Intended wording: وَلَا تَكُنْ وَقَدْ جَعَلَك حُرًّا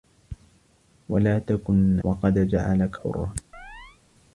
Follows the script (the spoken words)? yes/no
yes